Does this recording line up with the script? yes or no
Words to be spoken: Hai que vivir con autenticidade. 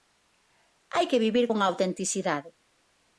yes